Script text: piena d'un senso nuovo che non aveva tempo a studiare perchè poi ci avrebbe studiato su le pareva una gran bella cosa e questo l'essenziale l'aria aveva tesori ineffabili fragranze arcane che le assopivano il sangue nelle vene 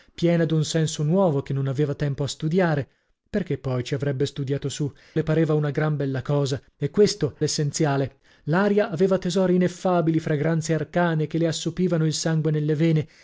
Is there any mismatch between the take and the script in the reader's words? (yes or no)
no